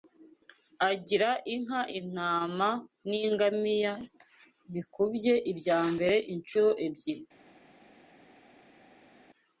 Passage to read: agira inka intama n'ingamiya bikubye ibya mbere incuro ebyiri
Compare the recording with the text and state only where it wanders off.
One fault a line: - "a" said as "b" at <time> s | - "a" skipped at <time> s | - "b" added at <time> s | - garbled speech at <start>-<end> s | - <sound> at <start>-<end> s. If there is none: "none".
none